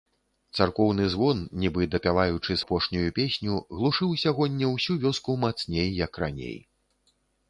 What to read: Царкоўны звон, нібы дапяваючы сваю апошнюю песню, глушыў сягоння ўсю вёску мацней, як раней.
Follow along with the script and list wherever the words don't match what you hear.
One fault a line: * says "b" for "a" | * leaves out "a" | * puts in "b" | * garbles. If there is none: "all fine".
* leaves out "сваю"